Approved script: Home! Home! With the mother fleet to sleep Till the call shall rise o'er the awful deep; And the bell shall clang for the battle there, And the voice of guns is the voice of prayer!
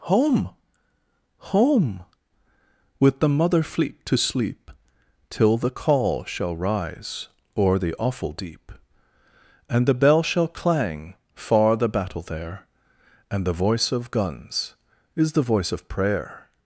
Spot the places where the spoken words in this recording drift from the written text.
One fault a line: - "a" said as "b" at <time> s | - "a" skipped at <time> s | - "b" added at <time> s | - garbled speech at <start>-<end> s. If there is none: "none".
- "for" said as "far" at 11.3 s